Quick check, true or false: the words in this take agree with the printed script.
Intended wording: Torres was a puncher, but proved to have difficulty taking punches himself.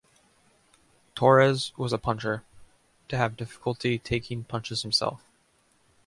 false